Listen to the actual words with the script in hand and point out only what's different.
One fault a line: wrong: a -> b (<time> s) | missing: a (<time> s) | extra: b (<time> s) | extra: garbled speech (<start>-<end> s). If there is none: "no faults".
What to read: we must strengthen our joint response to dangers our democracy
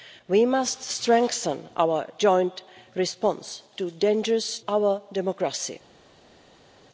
no faults